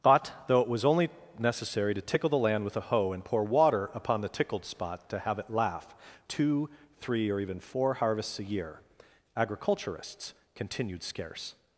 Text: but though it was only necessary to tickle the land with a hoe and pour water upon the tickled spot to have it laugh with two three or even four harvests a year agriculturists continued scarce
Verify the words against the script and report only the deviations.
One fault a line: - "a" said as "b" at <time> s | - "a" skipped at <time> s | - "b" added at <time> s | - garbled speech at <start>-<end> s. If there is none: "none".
- "with" skipped at 5.9 s